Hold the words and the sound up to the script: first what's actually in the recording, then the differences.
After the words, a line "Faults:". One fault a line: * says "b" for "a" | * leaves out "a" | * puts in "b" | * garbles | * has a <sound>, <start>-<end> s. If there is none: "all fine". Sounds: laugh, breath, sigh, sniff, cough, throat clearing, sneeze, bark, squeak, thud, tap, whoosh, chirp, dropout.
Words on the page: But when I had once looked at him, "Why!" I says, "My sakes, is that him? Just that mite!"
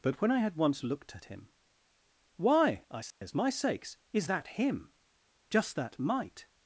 But when I had once looked at him, "Why!" I says, "My sakes, is that him? Just that mite!"
Faults:
* has a dropout, 3.1-3.2 s